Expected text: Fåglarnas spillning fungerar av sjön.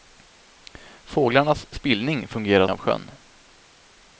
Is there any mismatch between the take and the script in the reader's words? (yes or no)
no